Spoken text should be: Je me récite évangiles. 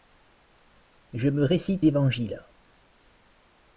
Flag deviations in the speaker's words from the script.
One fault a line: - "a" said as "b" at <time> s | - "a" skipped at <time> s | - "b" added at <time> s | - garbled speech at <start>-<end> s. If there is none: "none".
none